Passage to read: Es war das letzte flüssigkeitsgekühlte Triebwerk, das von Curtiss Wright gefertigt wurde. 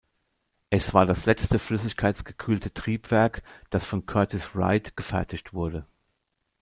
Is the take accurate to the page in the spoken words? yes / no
yes